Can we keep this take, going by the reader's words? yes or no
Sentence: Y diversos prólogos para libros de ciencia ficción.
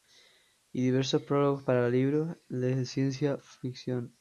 yes